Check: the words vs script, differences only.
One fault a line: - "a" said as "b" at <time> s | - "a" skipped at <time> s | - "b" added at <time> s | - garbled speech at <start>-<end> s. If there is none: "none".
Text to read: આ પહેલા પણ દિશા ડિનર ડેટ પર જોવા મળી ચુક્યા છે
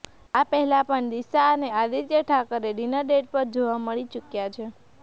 - "અને આદિત્ય ઠાકરે" added at 1.5 s